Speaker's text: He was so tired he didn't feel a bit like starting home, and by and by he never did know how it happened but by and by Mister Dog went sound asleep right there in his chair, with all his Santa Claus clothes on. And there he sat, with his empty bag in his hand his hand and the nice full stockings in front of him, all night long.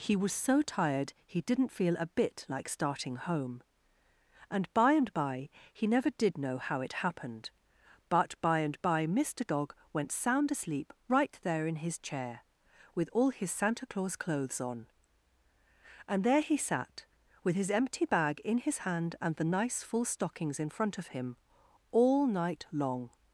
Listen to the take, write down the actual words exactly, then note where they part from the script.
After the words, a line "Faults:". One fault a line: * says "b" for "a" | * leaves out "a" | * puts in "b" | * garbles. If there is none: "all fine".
He was so tired he didn't feel a bit like starting home, and by and by he never did know how it happened but by and by Mister Dog went sound asleep right there in his chair, with all his Santa Claus clothes on. And there he sat, with his empty bag in his hand and the nice full stockings in front of him, all night long.
Faults:
* leaves out "his hand"